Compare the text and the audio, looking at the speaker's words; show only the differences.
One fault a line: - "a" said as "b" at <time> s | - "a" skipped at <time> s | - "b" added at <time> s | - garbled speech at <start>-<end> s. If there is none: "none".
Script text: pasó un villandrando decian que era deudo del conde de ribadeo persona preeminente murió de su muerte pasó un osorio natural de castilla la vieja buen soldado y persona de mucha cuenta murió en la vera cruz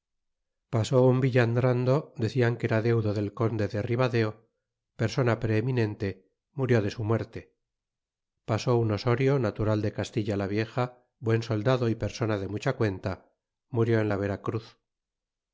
none